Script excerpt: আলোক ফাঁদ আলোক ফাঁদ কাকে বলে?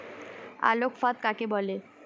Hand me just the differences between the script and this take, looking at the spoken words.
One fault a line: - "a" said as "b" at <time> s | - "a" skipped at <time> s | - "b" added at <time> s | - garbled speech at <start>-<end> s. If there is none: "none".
- "আলোক ফাঁদ" skipped at 1.2 s